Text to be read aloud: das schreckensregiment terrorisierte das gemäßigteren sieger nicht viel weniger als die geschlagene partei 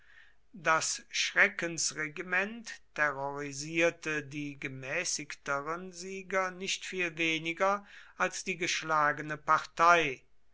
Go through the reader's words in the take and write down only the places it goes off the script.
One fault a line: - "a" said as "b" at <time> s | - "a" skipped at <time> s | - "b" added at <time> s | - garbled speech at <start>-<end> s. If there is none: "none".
- "das" said as "die" at 4.2 s